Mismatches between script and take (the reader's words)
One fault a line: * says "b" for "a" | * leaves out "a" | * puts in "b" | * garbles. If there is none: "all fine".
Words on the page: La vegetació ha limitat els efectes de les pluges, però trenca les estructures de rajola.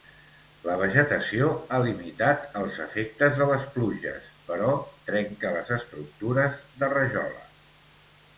all fine